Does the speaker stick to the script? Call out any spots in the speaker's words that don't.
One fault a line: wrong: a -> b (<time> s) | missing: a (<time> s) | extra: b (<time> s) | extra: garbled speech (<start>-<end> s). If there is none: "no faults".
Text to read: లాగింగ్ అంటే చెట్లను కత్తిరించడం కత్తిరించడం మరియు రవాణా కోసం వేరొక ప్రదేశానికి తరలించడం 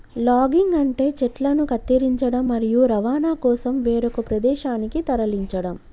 missing: కత్తిరించడం (2.5 s)